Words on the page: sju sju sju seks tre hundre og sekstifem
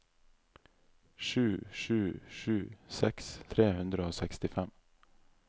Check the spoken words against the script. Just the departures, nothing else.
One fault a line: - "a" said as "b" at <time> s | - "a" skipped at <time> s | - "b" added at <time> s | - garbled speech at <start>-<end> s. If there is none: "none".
none